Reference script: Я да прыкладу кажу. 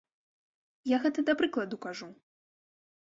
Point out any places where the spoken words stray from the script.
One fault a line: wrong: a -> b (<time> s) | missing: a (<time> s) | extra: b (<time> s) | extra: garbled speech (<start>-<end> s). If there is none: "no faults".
extra: гэта (1.1 s)